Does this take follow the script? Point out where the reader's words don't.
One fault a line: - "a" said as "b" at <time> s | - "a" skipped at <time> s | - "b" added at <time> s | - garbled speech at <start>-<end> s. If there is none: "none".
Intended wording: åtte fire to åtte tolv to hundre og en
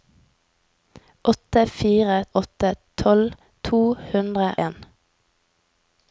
- "to" skipped at 2.2 s
- "og" skipped at 4.5 s